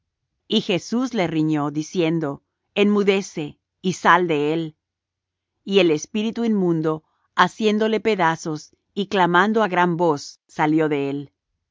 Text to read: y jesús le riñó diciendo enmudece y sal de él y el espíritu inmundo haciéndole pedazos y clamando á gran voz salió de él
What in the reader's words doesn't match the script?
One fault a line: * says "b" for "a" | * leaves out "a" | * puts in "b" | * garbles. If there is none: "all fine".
all fine